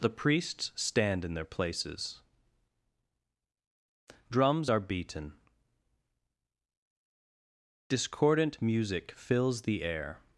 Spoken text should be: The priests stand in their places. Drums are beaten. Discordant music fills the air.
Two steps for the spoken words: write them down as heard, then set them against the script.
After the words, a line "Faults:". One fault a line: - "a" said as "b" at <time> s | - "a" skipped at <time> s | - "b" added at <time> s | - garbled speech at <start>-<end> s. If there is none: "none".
The priests stand in their places. Drums are beaten. Discordant music fills the air.
Faults:
none